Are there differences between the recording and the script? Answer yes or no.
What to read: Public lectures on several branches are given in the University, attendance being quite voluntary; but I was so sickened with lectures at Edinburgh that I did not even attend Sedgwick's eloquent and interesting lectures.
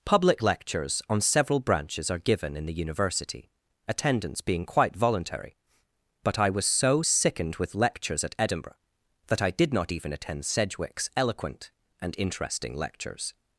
no